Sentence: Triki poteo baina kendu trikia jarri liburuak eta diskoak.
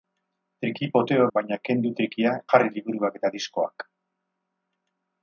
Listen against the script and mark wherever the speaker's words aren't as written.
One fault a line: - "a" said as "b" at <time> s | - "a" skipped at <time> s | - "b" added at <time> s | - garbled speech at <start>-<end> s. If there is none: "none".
none